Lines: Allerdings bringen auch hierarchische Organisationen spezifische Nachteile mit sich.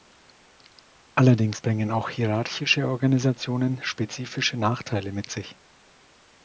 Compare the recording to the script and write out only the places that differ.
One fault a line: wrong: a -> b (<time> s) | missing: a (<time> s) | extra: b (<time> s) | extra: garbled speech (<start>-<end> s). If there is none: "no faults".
no faults